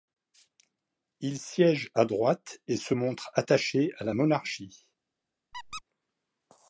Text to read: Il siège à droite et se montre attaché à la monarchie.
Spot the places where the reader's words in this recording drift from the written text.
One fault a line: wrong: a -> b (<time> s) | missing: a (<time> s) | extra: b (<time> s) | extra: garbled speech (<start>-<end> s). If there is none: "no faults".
no faults